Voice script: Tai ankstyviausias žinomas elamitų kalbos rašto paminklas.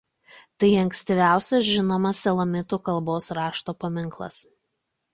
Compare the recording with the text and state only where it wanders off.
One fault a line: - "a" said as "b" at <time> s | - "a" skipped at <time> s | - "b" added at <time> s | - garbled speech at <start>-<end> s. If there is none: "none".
none